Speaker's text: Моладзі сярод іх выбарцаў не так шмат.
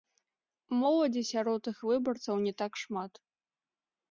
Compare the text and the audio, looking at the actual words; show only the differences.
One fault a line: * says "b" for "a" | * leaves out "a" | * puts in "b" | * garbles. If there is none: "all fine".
all fine